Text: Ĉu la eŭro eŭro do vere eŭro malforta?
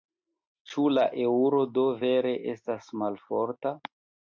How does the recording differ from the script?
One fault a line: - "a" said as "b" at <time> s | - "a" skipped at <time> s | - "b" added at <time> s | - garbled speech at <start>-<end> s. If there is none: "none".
- "eŭro" skipped at 1.6 s
- "eŭro" said as "estas" at 2.6 s